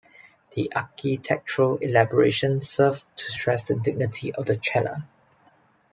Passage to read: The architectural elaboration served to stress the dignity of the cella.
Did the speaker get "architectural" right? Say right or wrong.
right